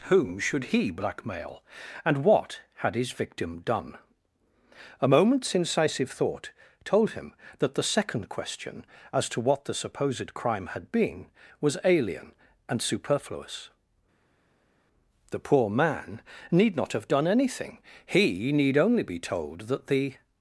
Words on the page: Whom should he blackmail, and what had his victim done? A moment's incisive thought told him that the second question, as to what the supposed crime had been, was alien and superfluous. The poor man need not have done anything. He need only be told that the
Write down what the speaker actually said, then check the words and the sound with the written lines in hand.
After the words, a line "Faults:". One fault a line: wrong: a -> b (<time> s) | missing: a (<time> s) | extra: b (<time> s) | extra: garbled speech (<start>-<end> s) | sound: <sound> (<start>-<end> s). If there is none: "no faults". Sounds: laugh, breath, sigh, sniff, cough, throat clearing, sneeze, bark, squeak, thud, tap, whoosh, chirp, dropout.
Whom should he blackmail, and what had his victim done? A moment's incisive thought told him that the second question, as to what the supposed crime had been, was alien and superfluous. The poor man need not have done anything. He need only be told that the
Faults:
no faults